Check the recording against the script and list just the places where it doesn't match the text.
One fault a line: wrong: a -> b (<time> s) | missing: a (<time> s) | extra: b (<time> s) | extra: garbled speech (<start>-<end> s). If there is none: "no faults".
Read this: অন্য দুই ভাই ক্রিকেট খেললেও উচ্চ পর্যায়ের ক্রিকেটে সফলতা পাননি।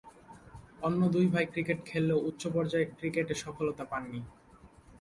no faults